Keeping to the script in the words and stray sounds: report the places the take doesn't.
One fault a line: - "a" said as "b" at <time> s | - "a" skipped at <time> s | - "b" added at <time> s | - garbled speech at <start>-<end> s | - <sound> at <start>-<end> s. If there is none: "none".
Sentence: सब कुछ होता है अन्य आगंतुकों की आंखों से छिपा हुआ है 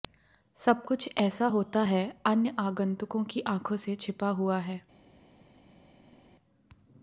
- "ऐसा" added at 1.2 s